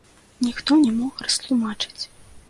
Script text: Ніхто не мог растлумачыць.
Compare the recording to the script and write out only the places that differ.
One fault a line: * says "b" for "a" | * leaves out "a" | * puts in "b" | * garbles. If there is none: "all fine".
all fine